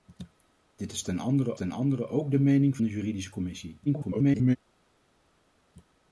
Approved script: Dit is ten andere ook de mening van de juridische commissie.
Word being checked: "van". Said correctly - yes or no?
no